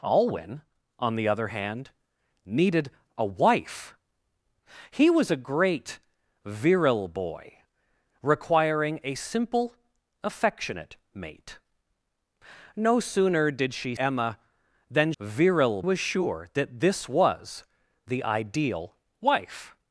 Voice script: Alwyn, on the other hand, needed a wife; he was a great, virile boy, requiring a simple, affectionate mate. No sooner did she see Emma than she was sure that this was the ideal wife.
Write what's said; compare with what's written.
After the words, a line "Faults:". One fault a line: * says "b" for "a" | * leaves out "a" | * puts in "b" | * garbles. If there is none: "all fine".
Alwyn, on the other hand, needed a wife; he was a great, virile boy, requiring a simple, affectionate mate. No sooner did she Emma than virile was sure that this was the ideal wife.
Faults:
* leaves out "see"
* says "virile" for "she"